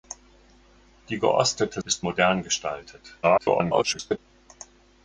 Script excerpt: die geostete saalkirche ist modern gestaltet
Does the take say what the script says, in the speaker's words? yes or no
no